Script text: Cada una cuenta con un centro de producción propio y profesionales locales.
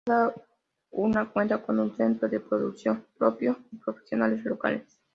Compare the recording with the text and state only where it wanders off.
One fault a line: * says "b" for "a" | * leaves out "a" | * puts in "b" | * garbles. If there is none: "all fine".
all fine